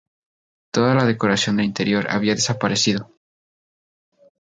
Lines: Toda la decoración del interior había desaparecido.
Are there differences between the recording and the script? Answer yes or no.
no